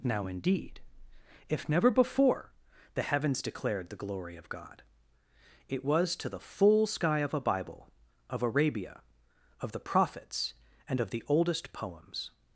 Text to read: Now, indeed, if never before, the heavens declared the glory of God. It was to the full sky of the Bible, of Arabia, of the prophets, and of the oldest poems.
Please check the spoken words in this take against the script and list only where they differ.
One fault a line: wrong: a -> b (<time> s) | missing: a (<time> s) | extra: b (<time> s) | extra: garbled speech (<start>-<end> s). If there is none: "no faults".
wrong: the -> a (7.3 s)